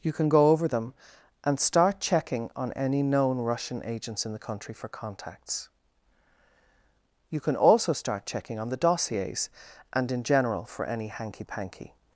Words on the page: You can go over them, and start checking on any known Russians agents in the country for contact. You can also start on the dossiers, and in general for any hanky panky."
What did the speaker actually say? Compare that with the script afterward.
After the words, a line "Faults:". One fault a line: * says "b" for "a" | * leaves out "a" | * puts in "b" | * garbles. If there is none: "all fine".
You can go over them, and start checking on any known Russian agents in the country for contacts. You can also start checking on the dossiers, and in general for any hanky panky."
Faults:
* says "Russian" for "Russians"
* says "contacts" for "contact"
* puts in "checking"